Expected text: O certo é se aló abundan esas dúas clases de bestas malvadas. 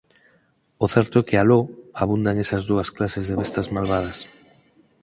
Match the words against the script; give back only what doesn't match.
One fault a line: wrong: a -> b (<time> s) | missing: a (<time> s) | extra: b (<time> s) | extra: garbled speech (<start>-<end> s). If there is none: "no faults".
wrong: se -> que (1.3 s)